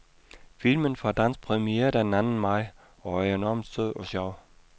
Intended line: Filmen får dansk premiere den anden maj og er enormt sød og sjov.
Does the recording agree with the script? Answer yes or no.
yes